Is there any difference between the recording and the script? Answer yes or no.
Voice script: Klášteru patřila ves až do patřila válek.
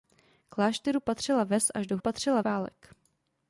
no